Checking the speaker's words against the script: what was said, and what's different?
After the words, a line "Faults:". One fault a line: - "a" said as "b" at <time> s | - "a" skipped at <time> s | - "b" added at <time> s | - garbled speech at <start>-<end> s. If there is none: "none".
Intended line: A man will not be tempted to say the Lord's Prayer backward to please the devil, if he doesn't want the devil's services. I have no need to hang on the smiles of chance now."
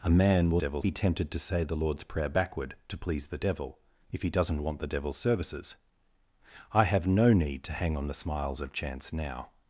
A man will devil's be tempted to say the Lord's Prayer backward to please the devil, if he doesn't want the devil's services. I have no need to hang on the smiles of chance now."
Faults:
- "not" said as "devil's" at 0.6 s